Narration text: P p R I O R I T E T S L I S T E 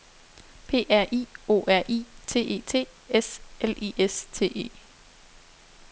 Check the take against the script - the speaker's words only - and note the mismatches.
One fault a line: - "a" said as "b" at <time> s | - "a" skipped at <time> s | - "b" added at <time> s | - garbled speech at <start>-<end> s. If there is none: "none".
- "p" skipped at 0.9 s